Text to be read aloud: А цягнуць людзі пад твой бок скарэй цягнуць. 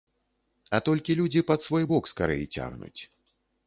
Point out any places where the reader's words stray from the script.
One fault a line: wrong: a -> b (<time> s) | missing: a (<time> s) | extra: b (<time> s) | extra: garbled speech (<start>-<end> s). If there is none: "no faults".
wrong: цягнуць -> толькі (0.9 s)
wrong: твой -> свой (1.7 s)